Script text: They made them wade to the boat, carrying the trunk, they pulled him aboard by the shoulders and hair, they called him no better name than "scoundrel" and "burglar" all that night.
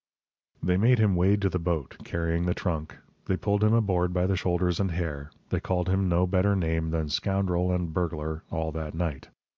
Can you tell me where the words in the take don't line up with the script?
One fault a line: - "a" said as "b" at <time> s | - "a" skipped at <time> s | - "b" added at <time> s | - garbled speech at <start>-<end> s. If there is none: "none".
- "them" said as "him" at 1.0 s